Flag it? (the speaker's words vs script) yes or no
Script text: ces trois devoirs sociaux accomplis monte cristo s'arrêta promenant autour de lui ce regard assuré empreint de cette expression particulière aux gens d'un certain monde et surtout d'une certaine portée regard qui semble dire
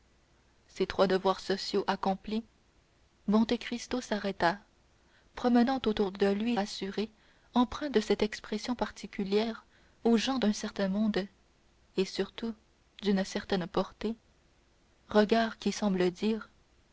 yes